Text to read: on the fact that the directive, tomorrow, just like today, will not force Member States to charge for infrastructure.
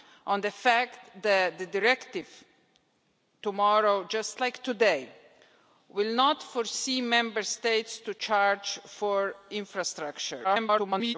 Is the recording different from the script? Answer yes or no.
yes